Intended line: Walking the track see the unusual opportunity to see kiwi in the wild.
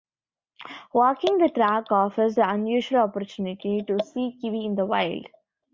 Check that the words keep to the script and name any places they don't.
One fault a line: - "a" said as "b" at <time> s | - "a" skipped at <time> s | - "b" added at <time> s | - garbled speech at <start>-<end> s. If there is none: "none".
- "see" said as "offers" at 1.9 s